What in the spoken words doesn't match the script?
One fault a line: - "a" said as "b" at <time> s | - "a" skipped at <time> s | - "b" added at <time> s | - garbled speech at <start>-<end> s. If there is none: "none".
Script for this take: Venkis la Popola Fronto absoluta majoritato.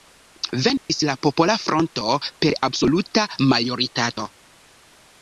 - "per" added at 2.4 s